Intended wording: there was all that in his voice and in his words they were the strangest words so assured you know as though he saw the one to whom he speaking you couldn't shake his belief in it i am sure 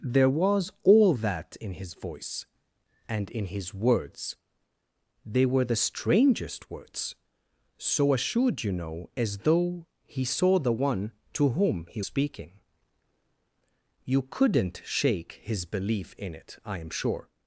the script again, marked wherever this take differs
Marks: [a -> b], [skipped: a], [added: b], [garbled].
there was all that in his voice and in his words they were the strangest words so assured you know as though he saw the one to whom he speaking you couldn't shake his belief in it i am sure